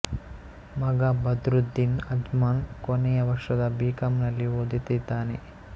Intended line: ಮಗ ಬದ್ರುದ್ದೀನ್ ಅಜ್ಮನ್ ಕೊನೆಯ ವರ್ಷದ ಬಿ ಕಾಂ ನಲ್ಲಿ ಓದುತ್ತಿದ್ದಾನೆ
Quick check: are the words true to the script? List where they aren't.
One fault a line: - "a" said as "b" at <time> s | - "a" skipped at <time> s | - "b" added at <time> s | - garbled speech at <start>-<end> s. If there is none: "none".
none